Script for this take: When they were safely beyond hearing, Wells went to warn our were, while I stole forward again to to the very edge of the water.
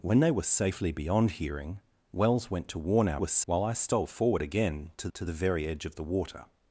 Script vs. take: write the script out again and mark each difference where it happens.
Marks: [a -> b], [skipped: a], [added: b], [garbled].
When they were safely beyond hearing, Wells went to warn our were, while I stole forward again to to the very edge of the water.